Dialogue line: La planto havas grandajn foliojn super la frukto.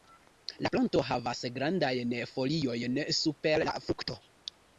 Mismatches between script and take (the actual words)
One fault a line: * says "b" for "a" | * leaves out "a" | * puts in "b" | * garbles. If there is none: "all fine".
all fine